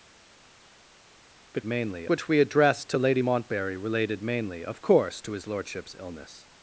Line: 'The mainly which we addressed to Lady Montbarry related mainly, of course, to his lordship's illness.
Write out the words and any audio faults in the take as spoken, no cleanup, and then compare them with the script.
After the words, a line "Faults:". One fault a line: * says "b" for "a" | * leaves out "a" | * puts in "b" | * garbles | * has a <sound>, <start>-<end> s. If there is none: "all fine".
'The mainly which we addressed to Lady Montbarry related mainly, of course, to his lordship's illness.
Faults:
all fine